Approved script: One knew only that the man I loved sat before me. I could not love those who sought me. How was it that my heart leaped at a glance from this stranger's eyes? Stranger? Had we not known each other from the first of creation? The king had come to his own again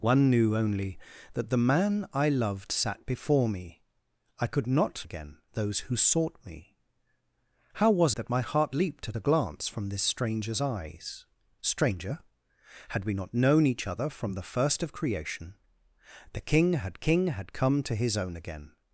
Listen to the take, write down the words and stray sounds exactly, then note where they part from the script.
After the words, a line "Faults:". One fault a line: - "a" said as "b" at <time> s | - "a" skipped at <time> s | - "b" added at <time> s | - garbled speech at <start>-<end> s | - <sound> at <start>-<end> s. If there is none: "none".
One knew only that the man I loved sat before me. I could not again those who sought me. How was that my heart leaped at a glance from this stranger's eyes? Stranger? Had we not known each other from the first of creation? The king had king had come to his own again
Faults:
- "love" said as "again" at 5.0 s
- "it" skipped at 8.1 s
- "king had" added at 17.0 s